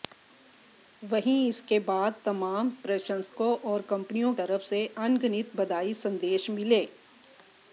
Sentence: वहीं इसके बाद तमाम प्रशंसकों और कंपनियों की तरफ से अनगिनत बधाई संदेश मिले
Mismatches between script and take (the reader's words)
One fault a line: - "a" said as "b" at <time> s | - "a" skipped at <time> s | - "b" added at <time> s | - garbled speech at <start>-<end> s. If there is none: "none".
- "की" skipped at 4.3 s